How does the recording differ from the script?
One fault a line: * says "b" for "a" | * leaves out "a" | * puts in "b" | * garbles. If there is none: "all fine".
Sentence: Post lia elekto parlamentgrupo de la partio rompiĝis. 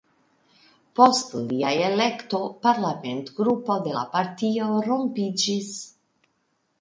all fine